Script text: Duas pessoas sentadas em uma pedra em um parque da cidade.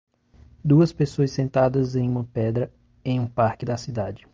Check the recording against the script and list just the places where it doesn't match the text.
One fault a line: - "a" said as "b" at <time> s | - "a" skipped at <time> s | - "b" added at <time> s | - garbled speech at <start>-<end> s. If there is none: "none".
none